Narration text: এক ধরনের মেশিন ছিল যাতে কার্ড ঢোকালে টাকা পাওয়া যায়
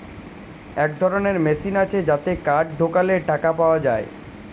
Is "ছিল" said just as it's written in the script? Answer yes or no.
no